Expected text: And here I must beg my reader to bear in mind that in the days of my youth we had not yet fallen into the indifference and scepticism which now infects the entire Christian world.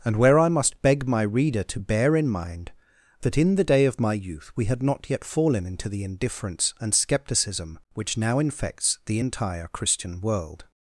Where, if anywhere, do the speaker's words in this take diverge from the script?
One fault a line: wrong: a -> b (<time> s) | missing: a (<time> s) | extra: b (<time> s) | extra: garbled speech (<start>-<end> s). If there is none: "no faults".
wrong: here -> where (0.1 s)
wrong: days -> day (3.6 s)